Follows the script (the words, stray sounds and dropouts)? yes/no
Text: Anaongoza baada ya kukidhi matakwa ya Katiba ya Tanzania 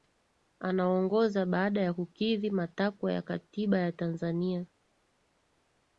yes